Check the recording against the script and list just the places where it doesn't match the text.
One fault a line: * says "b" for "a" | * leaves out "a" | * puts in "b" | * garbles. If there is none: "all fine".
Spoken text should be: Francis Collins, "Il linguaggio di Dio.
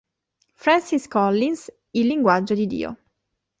all fine